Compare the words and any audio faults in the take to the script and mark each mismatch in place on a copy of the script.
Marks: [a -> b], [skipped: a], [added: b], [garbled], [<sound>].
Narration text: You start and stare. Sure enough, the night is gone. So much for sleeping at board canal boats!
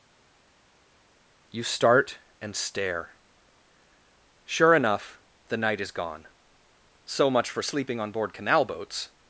You start and stare. Sure enough, the night is gone. So much for sleeping [at -> on] board canal boats!